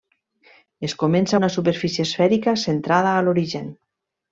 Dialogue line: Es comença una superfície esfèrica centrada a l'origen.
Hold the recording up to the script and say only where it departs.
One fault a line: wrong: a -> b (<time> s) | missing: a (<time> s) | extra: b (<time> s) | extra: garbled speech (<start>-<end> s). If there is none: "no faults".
no faults